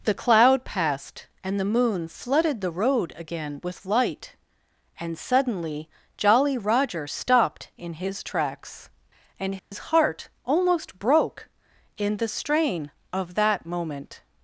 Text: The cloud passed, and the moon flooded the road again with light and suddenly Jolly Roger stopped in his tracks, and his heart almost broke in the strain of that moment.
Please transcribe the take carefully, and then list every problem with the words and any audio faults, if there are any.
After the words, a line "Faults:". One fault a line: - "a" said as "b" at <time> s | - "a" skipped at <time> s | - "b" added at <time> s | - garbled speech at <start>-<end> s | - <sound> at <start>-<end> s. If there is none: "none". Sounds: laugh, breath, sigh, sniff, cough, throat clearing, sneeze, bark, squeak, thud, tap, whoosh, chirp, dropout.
The cloud passed, and the moon flooded the road again with light and suddenly Jolly Roger stopped in his tracks, and his heart almost broke in the strain of that moment.
Faults:
- dropout at 9.6-9.7 s